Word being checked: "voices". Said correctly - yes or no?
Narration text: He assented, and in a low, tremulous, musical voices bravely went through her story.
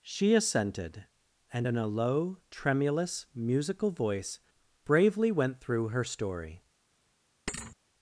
no